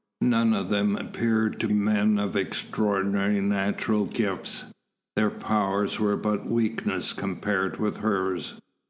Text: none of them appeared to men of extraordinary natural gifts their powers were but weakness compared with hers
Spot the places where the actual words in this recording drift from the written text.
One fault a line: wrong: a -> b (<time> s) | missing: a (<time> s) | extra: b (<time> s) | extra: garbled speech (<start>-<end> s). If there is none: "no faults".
no faults